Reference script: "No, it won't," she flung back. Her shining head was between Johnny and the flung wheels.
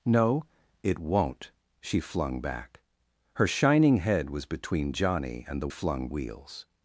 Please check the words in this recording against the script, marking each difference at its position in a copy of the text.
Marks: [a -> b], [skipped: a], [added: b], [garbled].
"No, it won't," she flung back. Her shining head was between Johnny and the flung wheels.